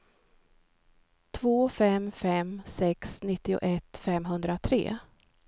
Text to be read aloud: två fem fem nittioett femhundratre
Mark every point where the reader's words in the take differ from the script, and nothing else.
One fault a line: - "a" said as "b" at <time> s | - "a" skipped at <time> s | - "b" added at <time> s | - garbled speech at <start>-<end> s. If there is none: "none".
- "sex" added at 2.6 s